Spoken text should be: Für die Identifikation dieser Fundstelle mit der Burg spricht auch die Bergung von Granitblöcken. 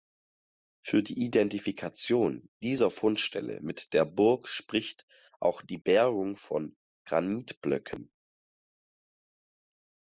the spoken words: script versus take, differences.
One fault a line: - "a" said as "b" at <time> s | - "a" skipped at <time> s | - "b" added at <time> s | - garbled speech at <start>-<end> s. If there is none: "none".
none